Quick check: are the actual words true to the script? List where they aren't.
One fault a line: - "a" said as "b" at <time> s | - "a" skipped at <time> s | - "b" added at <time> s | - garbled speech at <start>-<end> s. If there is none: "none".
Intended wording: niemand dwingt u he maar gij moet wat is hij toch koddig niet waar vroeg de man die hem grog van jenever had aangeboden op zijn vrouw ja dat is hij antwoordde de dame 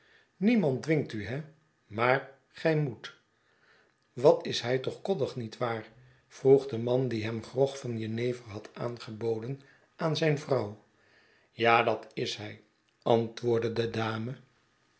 - "op" said as "aan" at 9.9 s